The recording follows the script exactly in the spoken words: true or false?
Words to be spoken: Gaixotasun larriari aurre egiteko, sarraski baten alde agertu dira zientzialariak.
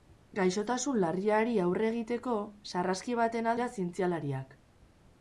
false